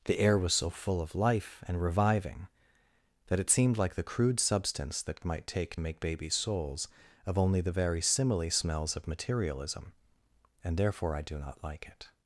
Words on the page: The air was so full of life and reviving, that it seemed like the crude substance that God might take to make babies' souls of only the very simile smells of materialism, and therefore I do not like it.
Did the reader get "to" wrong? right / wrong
wrong